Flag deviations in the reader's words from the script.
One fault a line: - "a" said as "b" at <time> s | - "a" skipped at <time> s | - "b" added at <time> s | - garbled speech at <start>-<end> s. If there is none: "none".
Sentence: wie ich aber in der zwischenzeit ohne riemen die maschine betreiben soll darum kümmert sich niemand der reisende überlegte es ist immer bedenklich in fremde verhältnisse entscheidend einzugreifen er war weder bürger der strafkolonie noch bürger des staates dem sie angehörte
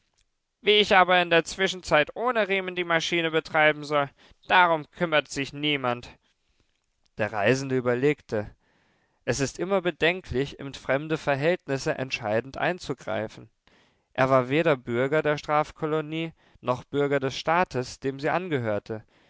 none